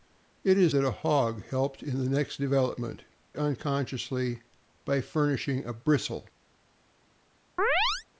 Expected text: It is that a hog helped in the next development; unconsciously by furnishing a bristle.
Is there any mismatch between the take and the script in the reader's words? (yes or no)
no